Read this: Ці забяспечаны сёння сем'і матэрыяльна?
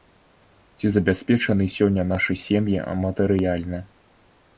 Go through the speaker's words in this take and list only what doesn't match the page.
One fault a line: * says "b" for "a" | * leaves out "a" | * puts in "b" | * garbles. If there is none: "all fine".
* puts in "нашы"